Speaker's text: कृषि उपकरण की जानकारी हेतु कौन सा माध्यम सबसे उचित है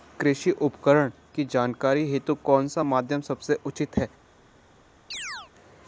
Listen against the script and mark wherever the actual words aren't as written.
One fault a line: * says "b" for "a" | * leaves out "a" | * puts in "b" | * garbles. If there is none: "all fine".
all fine